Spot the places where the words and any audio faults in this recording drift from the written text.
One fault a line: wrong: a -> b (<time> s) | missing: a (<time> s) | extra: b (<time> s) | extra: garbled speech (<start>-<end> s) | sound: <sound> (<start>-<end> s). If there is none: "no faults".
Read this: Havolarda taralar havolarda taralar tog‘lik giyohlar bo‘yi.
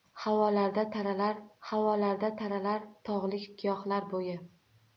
no faults